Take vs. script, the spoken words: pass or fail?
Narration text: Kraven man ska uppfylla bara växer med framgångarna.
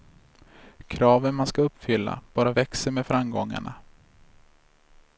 pass